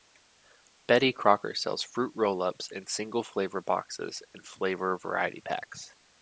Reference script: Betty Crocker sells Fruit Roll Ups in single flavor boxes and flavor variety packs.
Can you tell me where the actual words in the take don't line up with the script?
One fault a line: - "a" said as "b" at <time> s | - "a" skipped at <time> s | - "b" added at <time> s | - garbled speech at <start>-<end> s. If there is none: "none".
none